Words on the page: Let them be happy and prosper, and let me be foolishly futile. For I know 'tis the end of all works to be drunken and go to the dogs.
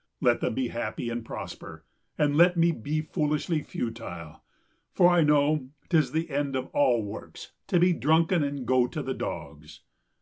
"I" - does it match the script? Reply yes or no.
yes